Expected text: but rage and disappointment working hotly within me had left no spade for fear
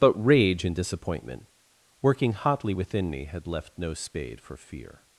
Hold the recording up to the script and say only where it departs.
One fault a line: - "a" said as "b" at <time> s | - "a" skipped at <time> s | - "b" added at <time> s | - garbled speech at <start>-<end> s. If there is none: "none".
none